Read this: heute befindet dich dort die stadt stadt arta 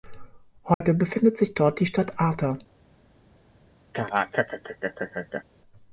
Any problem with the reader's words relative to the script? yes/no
yes